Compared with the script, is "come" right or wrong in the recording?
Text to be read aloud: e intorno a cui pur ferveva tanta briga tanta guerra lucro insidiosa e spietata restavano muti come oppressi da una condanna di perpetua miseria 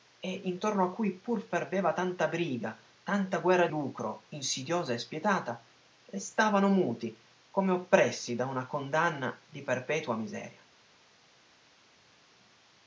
right